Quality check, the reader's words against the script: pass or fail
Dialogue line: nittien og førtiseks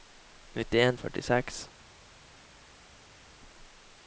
pass